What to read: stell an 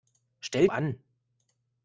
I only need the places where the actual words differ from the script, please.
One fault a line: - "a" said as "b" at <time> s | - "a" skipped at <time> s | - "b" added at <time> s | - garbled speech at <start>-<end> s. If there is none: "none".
none